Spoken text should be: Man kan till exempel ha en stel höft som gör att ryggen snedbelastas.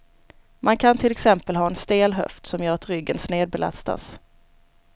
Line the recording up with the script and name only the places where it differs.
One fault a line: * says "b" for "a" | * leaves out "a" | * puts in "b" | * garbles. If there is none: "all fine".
all fine